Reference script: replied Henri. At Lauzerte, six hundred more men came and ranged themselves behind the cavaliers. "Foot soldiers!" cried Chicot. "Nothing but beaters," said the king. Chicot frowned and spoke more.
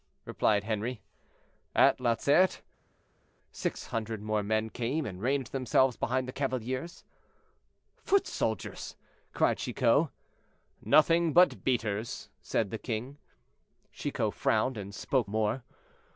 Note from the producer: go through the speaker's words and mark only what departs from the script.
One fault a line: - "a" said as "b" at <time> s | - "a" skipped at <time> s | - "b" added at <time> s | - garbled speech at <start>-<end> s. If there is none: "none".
none